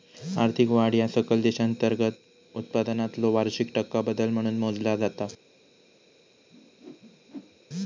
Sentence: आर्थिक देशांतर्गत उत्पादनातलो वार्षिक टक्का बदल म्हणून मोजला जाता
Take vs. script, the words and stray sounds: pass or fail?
fail